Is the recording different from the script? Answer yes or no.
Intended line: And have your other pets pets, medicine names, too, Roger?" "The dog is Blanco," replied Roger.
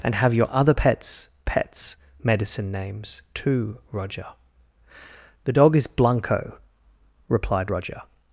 no